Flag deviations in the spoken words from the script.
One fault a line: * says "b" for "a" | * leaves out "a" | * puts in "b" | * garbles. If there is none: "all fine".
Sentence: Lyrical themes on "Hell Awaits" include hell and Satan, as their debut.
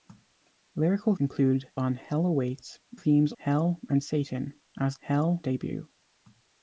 * says "include" for "themes"
* says "themes" for "include"
* says "hell" for "their"